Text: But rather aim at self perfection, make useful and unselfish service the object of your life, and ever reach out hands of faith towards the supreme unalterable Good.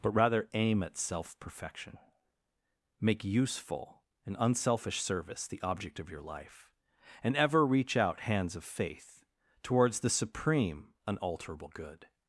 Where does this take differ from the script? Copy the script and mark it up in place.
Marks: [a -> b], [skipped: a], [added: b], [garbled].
But rather aim at self perfection, make useful and unselfish service the object of your life, and ever reach out hands of faith towards the supreme unalterable Good.